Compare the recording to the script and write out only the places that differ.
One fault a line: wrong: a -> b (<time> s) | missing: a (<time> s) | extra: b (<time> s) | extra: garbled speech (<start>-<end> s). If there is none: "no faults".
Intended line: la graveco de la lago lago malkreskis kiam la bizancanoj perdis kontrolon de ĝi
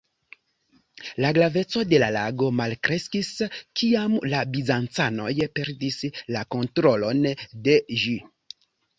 missing: lago (2.5 s)
extra: la (6.4 s)